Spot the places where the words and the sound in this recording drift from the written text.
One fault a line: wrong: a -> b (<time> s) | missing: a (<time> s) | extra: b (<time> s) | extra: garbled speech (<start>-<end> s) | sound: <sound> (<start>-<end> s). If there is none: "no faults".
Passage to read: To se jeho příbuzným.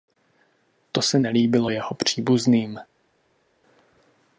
extra: nelíbilo (1.2 s)